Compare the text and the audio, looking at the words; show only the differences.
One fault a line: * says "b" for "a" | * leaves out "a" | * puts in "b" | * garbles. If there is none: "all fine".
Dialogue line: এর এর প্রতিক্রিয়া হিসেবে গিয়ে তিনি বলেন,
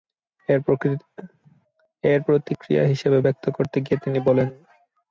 * leaves out "এর"
* puts in "ব্যক্ত করতে"